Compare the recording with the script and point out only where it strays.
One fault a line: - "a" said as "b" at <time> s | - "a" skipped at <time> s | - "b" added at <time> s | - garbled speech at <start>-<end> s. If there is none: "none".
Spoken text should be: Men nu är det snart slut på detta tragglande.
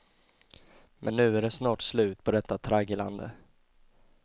none